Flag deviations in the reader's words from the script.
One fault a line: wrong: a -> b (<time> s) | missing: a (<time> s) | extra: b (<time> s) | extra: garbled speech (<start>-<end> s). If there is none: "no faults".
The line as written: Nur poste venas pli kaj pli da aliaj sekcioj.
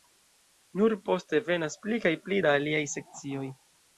no faults